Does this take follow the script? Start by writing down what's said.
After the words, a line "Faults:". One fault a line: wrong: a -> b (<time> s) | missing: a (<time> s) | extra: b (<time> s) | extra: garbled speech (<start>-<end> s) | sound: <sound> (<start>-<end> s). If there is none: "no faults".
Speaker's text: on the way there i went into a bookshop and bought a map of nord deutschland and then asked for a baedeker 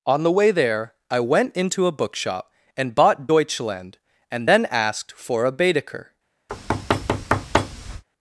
on the way there i went into a bookshop and bought deutschland and then asked for a baedeker
Faults:
missing: a map of nord (3.3 s)
sound: thud (6.5-8.0 s)